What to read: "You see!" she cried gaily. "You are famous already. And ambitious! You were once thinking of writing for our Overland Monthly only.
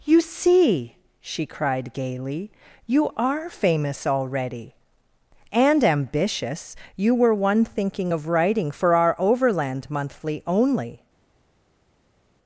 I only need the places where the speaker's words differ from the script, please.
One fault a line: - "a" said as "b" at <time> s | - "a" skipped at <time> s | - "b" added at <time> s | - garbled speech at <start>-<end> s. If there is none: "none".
- "once" said as "one" at 7.3 s